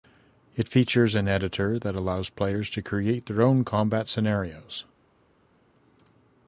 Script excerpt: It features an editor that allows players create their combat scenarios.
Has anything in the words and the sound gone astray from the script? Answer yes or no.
yes